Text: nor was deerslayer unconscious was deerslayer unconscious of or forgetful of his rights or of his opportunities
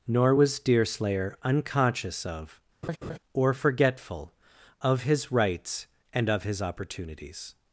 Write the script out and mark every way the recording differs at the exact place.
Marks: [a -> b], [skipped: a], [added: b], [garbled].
nor was deerslayer unconscious [skipped: was deerslayer unconscious] of or forgetful of his rights [or -> and] of his opportunities